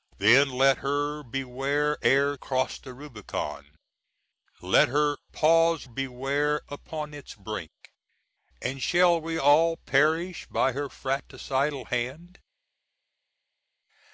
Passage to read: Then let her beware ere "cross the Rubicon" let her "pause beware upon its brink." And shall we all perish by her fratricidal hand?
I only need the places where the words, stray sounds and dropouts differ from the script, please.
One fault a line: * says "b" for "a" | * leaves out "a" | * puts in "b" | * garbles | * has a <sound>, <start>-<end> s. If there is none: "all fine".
all fine